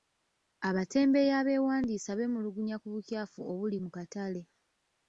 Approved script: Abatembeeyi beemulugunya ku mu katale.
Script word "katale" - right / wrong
right